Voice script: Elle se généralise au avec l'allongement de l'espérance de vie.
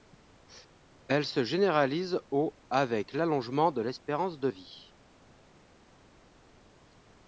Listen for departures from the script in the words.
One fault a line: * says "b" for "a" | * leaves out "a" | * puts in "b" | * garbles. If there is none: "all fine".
all fine